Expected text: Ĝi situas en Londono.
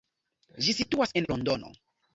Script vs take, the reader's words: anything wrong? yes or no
no